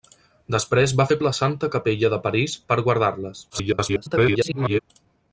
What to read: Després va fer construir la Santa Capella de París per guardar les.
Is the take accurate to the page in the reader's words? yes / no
no